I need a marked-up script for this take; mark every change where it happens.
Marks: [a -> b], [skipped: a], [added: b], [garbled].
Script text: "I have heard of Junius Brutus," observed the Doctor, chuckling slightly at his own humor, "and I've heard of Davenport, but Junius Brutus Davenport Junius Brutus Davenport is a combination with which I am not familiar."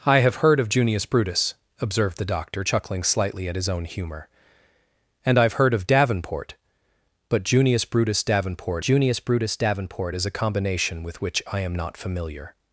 "I have heard of Junius Brutus," observed the Doctor, chuckling slightly at his own humor, "and I've heard of Davenport, but Junius Brutus Davenport Junius Brutus Davenport is a combination with which I am not familiar."